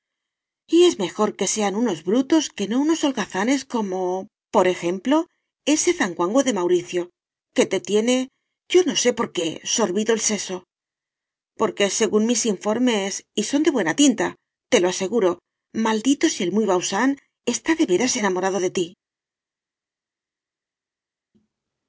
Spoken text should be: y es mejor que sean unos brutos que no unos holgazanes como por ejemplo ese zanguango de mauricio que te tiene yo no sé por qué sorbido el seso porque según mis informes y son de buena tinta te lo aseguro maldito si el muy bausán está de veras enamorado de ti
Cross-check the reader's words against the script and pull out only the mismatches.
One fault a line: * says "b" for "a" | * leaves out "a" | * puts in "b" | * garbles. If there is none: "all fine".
all fine